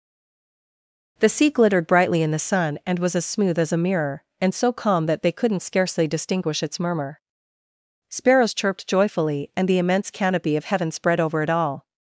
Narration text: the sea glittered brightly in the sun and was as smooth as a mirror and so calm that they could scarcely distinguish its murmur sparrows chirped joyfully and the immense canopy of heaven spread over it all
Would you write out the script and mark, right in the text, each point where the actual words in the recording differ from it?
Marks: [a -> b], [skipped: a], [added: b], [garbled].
the sea glittered brightly in the sun and was as smooth as a mirror and so calm that they [could -> couldn't] scarcely distinguish its murmur sparrows chirped joyfully and the immense canopy of heaven spread over it all